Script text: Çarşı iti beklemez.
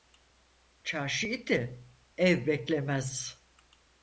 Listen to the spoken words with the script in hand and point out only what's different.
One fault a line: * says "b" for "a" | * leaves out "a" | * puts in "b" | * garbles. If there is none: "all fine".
* puts in "ev"